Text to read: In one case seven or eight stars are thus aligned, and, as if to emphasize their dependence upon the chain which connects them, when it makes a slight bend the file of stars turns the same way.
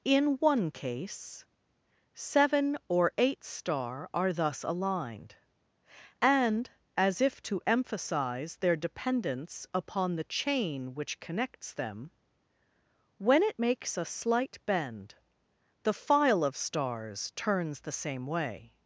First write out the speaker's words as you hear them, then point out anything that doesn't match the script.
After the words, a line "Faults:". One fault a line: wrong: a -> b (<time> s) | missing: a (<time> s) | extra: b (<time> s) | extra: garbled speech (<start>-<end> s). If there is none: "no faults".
In one case seven or eight star are thus aligned, and, as if to emphasize their dependence upon the chain which connects them, when it makes a slight bend the file of stars turns the same way.
Faults:
wrong: stars -> star (3.4 s)